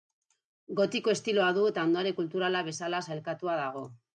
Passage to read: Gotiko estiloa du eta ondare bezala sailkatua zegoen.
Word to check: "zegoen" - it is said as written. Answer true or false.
false